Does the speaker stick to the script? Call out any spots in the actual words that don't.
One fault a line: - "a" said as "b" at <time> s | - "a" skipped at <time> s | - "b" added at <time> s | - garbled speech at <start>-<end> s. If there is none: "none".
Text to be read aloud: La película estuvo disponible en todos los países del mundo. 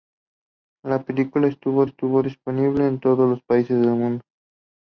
- "estuvo" added at 1.8 s